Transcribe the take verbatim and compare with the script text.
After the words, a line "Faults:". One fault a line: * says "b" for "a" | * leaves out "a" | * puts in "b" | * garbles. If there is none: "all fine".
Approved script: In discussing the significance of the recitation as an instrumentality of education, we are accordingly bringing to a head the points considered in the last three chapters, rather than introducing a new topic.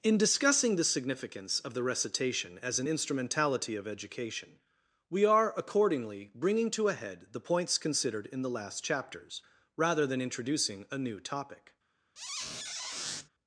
In discussing the significance of the recitation as an instrumentality of education, we are accordingly bringing to a head the points considered in the last chapters, rather than introducing a new topic.
Faults:
* leaves out "three"